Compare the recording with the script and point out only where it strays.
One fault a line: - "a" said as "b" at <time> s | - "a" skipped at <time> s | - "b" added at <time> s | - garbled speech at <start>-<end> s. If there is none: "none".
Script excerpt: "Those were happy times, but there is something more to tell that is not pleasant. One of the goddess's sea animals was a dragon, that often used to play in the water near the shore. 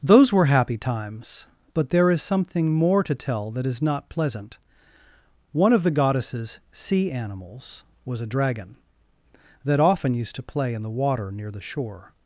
none